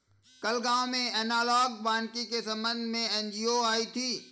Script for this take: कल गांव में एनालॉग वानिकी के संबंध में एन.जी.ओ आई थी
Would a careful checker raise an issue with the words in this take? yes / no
no